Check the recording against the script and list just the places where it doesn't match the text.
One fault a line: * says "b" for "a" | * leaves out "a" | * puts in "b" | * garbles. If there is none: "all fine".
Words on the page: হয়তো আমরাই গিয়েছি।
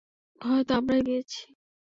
all fine